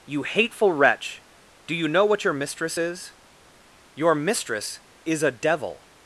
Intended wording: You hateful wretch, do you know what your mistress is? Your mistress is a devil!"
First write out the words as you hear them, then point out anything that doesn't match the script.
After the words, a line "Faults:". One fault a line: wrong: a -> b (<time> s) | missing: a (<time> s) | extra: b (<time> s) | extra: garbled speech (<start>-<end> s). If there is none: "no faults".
You hateful wretch, do you know what your mistress is? Your mistress is a devil!"
Faults:
no faults